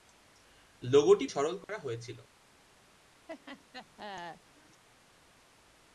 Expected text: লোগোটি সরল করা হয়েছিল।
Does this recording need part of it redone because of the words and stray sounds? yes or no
yes